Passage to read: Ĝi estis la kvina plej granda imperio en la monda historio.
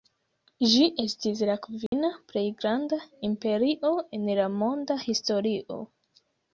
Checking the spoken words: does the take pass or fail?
pass